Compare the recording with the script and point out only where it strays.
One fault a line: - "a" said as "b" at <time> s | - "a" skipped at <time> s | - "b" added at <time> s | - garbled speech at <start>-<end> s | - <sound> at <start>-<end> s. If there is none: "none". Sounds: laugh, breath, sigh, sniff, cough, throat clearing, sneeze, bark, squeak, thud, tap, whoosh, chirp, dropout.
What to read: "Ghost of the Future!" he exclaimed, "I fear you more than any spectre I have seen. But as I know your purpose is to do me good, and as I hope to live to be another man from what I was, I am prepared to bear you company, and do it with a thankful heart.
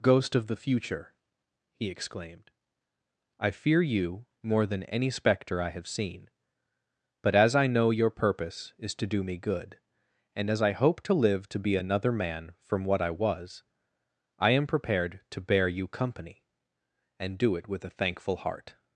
none